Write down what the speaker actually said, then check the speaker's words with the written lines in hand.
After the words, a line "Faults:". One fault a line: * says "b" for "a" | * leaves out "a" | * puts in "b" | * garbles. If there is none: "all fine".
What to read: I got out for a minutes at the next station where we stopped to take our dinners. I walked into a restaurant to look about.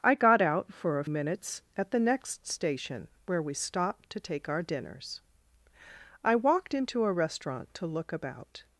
I got out for a minutes at the next station where we stopped to take our dinners. I walked into a restaurant to look about.
Faults:
all fine